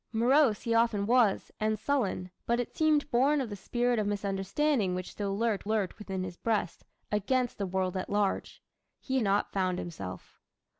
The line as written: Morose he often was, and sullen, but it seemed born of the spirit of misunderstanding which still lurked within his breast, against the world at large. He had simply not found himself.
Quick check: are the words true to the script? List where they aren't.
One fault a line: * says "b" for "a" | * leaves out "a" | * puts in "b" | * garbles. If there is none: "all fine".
* puts in "lurked"
* leaves out "had simply"